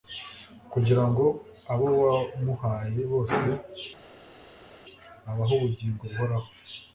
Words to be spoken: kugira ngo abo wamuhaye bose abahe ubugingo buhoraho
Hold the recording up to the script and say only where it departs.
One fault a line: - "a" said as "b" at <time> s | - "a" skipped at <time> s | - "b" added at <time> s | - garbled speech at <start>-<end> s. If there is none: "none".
none